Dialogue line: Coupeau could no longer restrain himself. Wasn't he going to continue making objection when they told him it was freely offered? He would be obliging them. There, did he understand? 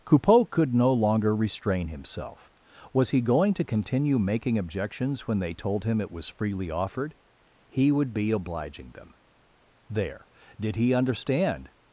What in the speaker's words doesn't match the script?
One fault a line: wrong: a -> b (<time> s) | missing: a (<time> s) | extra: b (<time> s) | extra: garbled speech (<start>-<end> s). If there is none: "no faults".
wrong: Wasn't -> Was (2.9 s)
wrong: objection -> objections (4.6 s)